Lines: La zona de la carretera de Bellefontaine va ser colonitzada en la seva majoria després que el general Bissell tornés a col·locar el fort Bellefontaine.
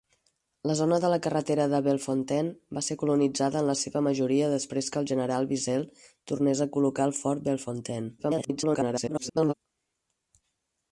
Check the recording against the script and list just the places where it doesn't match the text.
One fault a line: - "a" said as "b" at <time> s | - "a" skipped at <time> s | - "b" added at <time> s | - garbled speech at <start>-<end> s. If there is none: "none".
- garbled speech at 8.2-9.5 s